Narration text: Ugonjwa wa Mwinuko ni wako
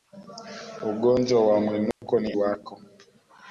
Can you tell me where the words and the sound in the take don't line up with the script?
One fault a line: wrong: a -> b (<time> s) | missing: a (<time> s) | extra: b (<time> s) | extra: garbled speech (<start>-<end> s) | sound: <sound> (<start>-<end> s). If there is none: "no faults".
sound: dropout (1.9-2.0 s)